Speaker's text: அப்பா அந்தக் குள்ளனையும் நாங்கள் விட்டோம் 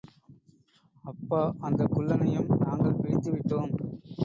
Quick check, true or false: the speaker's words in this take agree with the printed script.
false